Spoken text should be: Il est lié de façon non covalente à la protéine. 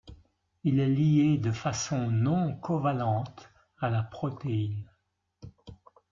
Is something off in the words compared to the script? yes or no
no